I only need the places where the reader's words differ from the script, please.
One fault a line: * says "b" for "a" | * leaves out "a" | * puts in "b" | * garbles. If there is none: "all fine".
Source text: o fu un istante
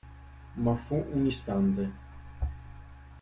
* says "ma" for "o"